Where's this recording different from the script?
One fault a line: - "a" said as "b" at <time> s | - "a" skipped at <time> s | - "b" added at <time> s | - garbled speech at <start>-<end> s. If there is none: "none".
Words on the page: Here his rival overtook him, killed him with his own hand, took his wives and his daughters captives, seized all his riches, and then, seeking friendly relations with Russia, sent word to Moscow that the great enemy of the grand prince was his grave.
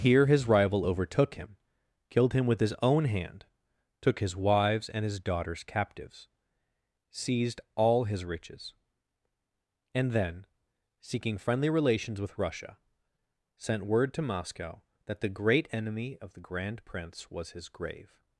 none